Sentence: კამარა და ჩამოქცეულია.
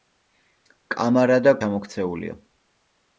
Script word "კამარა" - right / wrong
right